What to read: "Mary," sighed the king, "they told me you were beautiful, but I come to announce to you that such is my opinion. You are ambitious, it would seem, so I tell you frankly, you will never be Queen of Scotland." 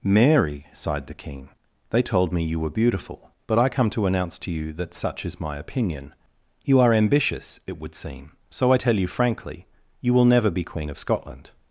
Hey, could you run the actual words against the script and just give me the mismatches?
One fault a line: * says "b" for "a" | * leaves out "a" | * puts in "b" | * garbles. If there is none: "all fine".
all fine